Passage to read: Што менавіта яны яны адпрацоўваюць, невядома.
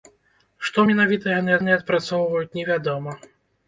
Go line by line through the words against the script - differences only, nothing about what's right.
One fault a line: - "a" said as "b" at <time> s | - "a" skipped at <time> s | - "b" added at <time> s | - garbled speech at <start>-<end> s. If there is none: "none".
none